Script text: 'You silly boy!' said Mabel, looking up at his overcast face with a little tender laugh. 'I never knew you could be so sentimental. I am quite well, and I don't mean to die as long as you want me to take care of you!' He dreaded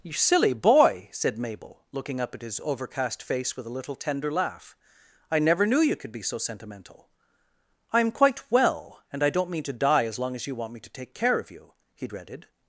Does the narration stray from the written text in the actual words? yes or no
no